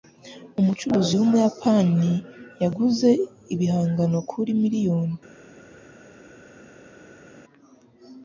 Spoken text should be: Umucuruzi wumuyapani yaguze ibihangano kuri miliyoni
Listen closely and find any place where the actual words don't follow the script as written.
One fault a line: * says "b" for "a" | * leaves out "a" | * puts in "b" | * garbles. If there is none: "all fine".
all fine